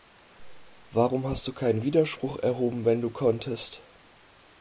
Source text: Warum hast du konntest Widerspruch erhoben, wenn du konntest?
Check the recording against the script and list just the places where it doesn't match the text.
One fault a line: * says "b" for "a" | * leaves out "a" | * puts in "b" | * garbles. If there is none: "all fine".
* says "keinen" for "konntest"